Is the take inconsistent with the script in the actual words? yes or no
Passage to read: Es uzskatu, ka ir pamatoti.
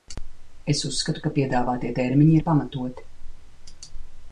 yes